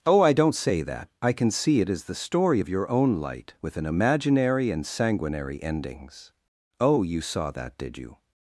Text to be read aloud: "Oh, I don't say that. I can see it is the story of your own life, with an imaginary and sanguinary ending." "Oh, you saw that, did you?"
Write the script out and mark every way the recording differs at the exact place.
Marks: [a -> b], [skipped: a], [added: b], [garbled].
"Oh, I don't say that. I can see it is the story of your own [life, -> light] with an imaginary and sanguinary [ending." -> endings] "Oh, you saw that, did you?"